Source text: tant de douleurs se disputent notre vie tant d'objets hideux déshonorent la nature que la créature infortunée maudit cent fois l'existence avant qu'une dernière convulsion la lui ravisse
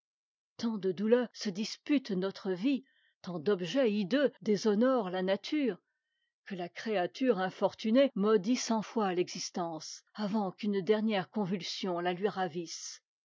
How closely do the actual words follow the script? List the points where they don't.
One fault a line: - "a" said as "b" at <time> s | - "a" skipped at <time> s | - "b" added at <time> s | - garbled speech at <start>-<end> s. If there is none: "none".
none